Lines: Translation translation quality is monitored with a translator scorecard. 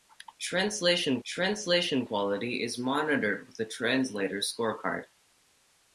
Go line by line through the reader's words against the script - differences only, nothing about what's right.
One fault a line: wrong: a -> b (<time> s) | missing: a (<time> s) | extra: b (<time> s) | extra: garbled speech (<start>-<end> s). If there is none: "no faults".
no faults